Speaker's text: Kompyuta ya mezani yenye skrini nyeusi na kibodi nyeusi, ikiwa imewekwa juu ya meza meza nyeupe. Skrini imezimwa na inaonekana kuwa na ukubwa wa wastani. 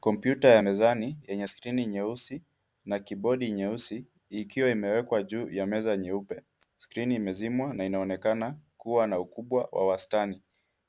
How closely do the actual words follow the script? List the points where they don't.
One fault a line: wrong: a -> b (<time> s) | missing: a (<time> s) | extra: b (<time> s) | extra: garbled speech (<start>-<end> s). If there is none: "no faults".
missing: meza (6.0 s)